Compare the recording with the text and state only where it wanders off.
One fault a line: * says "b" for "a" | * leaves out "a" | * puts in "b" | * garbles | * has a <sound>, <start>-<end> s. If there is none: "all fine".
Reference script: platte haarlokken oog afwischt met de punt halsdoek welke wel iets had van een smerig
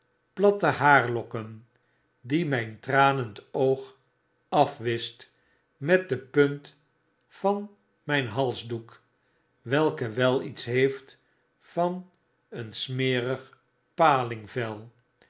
* puts in "die myn tranend"
* puts in "van myn"
* says "heeft" for "had"